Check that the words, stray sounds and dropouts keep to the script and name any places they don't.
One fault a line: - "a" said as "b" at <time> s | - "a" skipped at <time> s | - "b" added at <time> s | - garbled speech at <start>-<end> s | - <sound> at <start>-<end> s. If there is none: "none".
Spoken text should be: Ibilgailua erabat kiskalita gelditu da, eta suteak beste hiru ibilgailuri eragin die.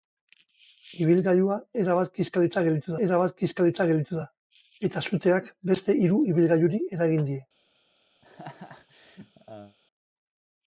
- "erabat kiskalita gelditu" added at 3.1 s
- laugh at 8.2-9.8 s